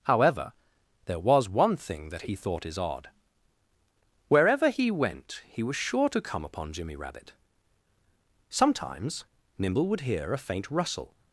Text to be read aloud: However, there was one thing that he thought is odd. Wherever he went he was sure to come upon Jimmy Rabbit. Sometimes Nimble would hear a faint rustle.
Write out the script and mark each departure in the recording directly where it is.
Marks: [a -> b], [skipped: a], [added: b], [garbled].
However, there was one thing that he thought is odd. Wherever he went he was sure to come upon Jimmy Rabbit. Sometimes Nimble would hear a faint rustle.